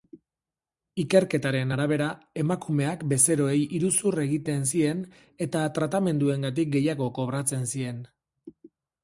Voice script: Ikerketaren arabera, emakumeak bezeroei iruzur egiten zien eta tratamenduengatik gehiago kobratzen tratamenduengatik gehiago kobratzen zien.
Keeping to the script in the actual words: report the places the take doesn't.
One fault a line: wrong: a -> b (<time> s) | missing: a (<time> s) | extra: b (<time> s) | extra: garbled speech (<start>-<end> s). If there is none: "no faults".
missing: tratamenduengatik gehiago kobratzen (7.6 s)